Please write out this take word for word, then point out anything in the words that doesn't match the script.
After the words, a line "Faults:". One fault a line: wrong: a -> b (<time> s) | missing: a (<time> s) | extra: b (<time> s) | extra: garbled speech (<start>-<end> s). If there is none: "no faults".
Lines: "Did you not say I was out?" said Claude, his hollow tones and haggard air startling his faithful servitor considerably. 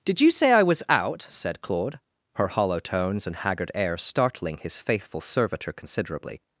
"Did you say I was out?" said Claude, her hollow tones and haggard air startling his faithful servitor considerably.
Faults:
missing: not (0.3 s)
wrong: his -> her (2.4 s)